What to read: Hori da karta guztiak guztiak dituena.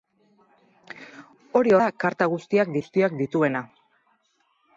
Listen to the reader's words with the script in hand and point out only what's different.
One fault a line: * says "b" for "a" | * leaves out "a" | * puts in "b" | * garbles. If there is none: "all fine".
all fine